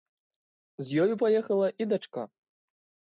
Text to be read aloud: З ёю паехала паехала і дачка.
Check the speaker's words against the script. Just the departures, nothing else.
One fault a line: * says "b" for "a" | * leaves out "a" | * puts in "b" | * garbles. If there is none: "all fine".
* leaves out "паехала"